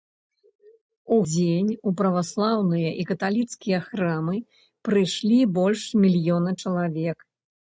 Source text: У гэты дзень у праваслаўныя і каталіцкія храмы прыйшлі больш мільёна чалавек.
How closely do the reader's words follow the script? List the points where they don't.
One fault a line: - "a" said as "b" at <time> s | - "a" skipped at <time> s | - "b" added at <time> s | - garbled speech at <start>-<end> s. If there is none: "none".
- "гэты" skipped at 1.2 s